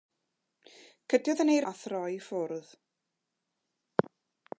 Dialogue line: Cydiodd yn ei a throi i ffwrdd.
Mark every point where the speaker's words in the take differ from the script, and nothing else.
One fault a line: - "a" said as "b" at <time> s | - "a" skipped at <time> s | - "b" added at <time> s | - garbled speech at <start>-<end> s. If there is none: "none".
none